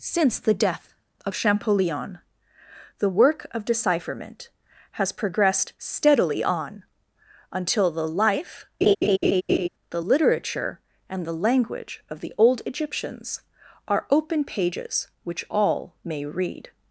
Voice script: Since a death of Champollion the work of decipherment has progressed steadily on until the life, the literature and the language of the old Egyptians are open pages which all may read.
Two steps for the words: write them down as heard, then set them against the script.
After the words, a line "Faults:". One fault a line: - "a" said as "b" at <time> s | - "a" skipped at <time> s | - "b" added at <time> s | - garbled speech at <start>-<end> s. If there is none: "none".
Since the death of Champollion the work of decipherment has progressed steadily on until the life, the literature and the language of the old Egyptians are open pages which all may read.
Faults:
- "a" said as "the" at 0.4 s